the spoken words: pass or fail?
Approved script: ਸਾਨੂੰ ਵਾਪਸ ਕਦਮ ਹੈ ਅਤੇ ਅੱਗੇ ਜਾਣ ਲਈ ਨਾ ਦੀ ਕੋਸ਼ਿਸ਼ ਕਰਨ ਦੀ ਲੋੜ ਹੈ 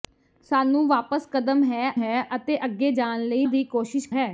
fail